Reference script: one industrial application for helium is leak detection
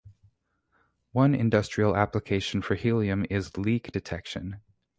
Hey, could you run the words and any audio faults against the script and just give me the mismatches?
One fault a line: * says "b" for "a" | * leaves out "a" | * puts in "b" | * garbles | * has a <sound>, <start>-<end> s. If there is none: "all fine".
all fine